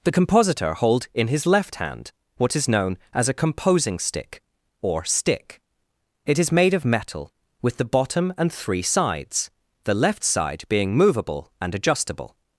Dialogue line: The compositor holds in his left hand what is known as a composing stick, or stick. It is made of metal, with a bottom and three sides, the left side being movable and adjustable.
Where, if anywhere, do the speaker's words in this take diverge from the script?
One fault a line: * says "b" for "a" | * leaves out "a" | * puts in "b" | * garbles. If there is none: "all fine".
* says "hold" for "holds"
* says "the" for "a"